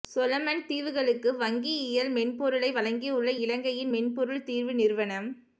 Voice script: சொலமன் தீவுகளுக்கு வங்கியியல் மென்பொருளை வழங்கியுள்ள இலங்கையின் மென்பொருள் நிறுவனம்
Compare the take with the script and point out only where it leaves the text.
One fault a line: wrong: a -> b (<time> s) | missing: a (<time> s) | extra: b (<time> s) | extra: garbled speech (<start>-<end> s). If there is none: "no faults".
extra: தீர்வு (4.5 s)